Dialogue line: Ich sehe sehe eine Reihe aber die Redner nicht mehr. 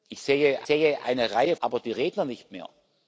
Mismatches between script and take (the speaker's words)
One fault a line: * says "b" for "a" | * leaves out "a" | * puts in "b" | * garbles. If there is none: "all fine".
all fine